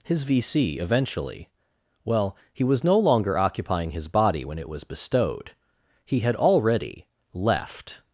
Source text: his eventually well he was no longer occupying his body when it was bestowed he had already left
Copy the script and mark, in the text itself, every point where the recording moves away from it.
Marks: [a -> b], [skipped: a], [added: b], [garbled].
his [added: v c] eventually well he was no longer occupying his body when it was bestowed he had already left